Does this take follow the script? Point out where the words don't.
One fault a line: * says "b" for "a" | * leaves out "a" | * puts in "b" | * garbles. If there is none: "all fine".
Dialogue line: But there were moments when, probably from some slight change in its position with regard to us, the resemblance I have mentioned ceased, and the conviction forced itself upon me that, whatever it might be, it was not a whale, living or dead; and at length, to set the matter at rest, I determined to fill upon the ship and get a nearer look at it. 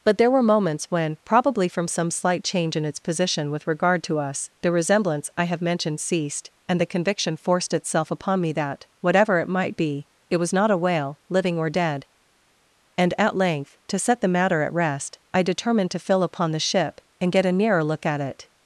all fine